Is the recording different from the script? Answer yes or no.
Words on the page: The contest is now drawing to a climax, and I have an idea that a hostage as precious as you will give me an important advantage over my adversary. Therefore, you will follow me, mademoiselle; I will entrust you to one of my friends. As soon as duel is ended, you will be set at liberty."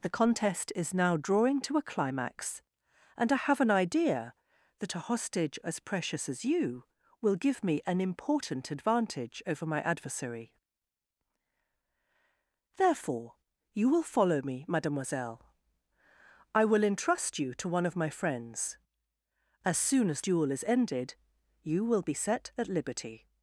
no